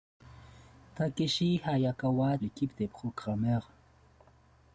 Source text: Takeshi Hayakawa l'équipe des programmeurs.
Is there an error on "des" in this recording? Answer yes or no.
no